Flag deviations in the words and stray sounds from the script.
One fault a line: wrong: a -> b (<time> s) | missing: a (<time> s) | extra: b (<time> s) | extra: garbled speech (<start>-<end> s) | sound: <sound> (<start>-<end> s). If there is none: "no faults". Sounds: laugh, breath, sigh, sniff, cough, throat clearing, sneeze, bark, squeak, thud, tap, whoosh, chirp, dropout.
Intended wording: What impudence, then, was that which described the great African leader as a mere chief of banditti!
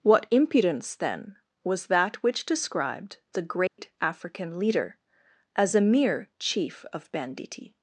sound: dropout (3.7-3.8 s)